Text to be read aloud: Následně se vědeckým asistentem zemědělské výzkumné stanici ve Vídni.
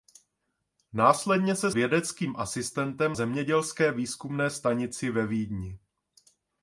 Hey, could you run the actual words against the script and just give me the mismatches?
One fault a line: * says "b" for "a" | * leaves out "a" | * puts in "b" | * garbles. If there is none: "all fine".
all fine